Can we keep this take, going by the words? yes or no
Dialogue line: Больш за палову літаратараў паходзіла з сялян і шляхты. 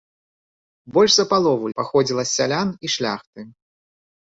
no